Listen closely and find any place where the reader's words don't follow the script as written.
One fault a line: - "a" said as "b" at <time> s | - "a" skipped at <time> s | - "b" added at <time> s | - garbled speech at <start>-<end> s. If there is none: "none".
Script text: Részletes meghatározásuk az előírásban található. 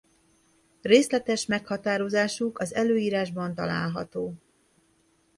none